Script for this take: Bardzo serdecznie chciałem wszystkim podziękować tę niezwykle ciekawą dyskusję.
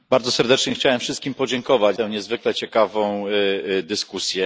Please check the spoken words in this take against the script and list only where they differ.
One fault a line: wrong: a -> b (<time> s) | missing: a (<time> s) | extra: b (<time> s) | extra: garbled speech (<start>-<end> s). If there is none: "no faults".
no faults